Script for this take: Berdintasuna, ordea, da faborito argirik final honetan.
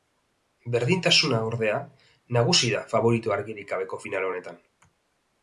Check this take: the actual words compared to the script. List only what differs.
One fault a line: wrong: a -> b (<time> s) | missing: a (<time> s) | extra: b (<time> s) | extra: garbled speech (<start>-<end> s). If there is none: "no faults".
extra: nagusi (2.4 s)
extra: gabeko (3.7 s)